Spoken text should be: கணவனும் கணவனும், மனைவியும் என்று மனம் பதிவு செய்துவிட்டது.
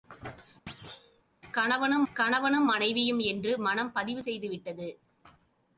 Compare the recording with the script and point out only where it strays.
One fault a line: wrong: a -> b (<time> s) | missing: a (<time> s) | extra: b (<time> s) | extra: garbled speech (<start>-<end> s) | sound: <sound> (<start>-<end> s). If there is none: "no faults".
sound: thud (0.7-1.2 s)